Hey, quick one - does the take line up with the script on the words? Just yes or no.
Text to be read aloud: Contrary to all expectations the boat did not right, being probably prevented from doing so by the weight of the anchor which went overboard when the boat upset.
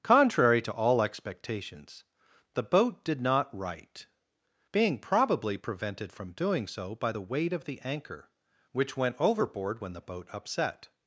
yes